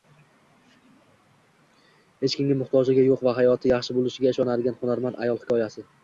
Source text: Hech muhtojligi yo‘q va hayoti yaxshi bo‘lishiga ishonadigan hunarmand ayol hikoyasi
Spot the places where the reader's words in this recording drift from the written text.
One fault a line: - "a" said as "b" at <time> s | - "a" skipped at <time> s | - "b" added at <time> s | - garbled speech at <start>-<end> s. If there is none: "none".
- "kimga" added at 2.4 s